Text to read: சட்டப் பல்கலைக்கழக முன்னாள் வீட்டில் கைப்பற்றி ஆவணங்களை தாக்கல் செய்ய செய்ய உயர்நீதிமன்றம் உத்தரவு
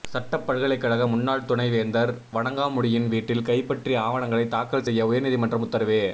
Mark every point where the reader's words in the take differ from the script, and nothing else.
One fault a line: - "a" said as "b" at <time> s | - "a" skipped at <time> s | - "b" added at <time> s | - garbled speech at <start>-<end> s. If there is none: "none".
- "துணை வேந்தர் வணங்காமுடியின்" added at 1.4 s
- "செய்ய" skipped at 5.1 s